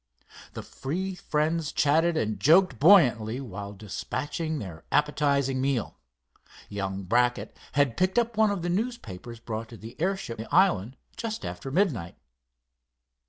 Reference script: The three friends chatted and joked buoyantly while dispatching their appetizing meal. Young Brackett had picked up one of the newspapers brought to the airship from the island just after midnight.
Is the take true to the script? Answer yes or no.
no